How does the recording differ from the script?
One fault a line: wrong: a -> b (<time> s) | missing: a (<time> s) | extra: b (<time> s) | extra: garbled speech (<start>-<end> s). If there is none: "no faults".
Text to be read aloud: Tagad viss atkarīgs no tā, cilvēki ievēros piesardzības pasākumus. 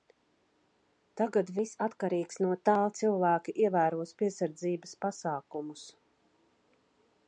no faults